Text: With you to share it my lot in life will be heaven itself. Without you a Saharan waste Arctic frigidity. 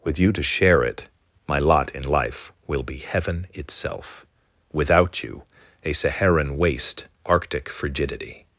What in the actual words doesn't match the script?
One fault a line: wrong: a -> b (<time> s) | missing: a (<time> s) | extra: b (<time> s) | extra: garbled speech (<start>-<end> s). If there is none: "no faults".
no faults